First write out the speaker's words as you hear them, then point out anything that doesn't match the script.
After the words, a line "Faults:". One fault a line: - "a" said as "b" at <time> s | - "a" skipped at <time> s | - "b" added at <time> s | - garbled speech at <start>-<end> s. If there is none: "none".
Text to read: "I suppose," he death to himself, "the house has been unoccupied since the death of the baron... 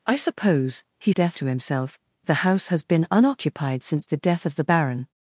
"I suppose," he death to himself, "the house has been unoccupied since the death of the baron...
Faults:
none